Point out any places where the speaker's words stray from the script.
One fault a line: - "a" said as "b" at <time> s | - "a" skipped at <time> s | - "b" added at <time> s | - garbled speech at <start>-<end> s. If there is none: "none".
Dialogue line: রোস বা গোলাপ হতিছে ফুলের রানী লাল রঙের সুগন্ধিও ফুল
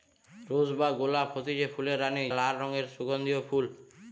none